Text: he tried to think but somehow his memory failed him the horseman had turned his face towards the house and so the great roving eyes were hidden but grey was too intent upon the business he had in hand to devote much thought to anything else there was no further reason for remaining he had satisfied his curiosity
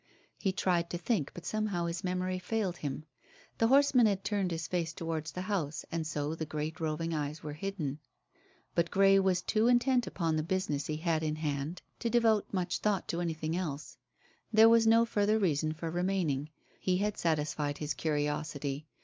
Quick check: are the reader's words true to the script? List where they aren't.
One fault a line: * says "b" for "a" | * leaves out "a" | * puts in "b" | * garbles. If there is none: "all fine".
all fine